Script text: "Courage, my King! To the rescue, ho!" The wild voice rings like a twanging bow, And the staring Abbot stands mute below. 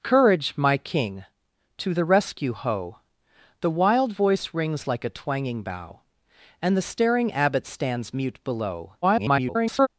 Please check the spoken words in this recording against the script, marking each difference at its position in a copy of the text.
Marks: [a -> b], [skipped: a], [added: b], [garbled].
"Courage, my King! To the rescue, ho!" The wild voice rings like a twanging bow, And the staring Abbot stands mute below. [garbled]